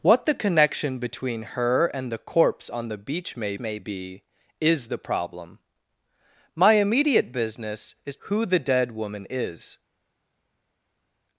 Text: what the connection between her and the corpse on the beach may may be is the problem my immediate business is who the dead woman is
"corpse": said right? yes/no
yes